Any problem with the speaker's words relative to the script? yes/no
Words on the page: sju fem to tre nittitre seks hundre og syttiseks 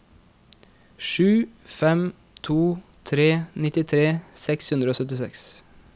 no